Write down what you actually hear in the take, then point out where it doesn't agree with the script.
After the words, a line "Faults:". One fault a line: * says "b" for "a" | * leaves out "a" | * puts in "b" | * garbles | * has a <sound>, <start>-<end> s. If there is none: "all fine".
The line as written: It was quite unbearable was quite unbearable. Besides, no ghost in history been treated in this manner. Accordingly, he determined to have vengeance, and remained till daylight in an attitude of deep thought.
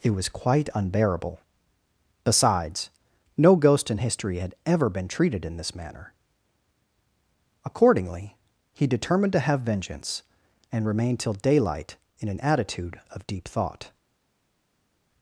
It was quite unbearable. Besides, no ghost in history had ever been treated in this manner. Accordingly, he determined to have vengeance, and remained till daylight in an attitude of deep thought.
Faults:
* leaves out "was quite unbearable"
* puts in "had ever"